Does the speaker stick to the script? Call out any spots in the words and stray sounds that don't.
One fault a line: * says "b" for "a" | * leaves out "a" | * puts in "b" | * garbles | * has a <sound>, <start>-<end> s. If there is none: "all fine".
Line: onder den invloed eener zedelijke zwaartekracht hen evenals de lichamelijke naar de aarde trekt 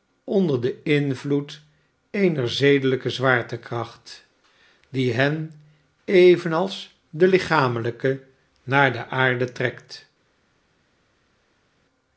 * puts in "die"